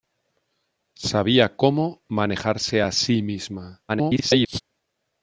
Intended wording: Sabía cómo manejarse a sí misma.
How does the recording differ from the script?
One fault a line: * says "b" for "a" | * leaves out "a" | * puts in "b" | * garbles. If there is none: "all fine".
* garbles